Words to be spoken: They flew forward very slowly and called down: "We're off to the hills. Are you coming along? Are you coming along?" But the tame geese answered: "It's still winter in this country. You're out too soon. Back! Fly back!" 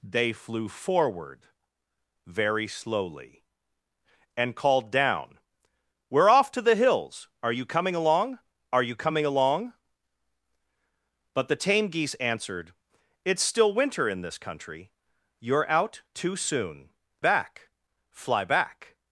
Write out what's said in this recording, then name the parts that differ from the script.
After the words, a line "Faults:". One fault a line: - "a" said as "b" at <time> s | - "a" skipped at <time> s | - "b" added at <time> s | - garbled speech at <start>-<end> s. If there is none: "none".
They flew forward very slowly and called down: "We're off to the hills. Are you coming along? Are you coming along?" But the tame geese answered: "It's still winter in this country. You're out too soon. Back! Fly back!"
Faults:
none